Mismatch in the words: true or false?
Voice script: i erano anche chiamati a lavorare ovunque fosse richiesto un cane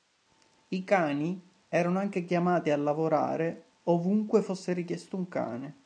true